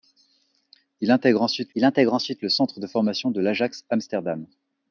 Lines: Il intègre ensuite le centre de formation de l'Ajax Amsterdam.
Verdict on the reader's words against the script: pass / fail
fail